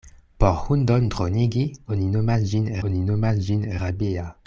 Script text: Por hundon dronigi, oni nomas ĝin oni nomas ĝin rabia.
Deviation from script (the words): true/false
false